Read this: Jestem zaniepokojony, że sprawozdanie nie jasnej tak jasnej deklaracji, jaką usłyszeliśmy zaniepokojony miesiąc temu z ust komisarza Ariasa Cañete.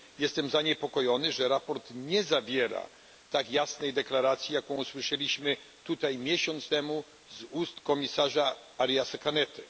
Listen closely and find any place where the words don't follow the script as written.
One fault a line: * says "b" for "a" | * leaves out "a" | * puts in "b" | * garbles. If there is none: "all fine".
* says "zawiera" for "jasnej"
* says "tutaj" for "zaniepokojony"